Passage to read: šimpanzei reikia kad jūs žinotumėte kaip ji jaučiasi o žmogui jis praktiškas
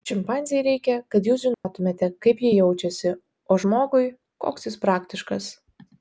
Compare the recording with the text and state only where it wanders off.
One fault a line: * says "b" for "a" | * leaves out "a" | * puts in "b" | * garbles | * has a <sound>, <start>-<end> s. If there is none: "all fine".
* has a dropout, 1.5-1.6 s
* puts in "koks"